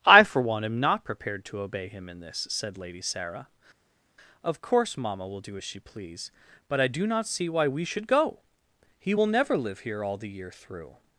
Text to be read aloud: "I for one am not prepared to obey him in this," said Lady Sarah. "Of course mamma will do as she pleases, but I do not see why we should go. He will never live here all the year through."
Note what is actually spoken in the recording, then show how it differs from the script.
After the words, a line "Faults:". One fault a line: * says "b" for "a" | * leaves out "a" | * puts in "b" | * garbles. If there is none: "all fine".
"I for one am not prepared to obey him in this," said Lady Sarah. "Of course mamma will do as she please, but I do not see why we should go. He will never live here all the year through."
Faults:
* says "please" for "pleases"